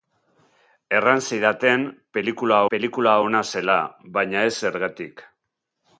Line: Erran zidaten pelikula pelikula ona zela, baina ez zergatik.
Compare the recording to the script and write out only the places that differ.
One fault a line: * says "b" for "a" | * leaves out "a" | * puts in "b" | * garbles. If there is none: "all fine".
all fine